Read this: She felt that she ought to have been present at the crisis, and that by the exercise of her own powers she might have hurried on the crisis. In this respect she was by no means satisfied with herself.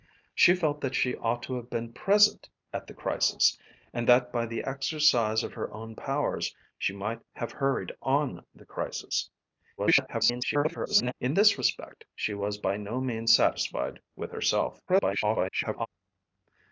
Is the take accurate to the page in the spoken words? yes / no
no